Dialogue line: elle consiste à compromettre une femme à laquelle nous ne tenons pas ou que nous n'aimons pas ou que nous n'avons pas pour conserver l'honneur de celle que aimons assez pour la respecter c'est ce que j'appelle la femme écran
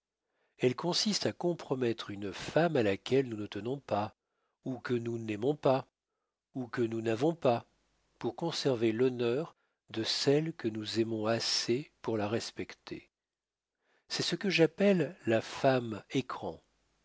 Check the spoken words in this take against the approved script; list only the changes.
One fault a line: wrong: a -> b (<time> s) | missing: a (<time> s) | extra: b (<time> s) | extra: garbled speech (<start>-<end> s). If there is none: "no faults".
extra: nous (10.7 s)